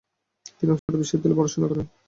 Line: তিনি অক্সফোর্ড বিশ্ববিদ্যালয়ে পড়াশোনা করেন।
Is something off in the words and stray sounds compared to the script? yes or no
yes